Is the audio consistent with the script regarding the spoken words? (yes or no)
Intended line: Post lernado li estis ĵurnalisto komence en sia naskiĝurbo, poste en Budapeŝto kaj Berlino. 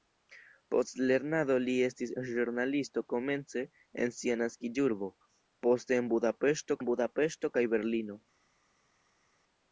no